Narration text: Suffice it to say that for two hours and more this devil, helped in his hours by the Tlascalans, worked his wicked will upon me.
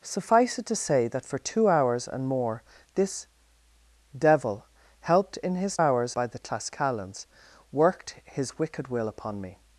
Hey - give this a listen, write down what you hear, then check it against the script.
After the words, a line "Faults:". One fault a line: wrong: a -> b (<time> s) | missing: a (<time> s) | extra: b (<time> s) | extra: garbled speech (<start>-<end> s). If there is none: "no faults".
Suffice it to say that for two hours and more this devil, helped in his hours by the Tlascalans, worked his wicked will upon me.
Faults:
no faults